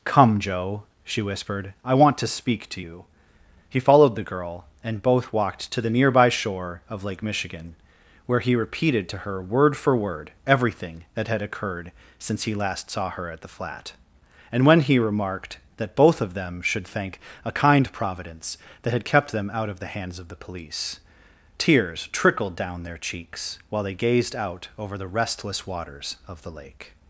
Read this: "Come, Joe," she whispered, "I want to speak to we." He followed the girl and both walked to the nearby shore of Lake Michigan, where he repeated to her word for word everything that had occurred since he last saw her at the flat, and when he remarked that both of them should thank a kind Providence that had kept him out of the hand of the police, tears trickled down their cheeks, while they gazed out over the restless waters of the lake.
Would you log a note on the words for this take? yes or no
yes